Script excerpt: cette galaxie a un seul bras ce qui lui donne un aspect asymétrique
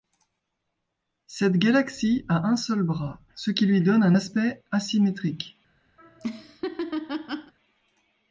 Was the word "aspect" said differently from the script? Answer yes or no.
no